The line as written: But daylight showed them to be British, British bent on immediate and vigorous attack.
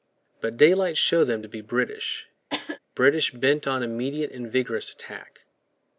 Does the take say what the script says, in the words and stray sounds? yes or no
no